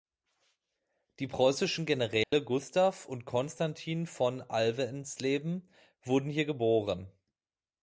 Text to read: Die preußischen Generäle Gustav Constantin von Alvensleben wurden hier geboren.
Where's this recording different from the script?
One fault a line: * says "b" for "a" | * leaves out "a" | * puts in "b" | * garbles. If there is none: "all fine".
* puts in "und"